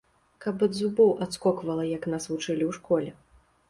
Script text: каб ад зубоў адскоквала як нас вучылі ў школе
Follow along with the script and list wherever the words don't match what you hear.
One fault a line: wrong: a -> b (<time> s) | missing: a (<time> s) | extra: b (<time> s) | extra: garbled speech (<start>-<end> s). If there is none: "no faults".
no faults